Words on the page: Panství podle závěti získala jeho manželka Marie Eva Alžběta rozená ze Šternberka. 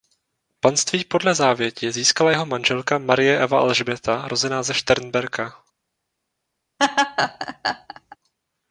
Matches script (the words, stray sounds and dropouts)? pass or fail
fail